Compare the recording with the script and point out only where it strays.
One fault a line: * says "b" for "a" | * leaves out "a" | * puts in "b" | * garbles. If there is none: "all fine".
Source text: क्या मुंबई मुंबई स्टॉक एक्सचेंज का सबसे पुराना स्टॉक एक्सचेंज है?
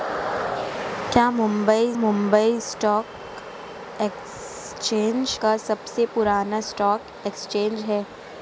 all fine